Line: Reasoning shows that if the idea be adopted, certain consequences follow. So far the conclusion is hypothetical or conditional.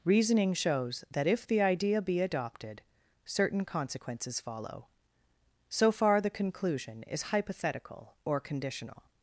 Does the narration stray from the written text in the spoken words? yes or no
no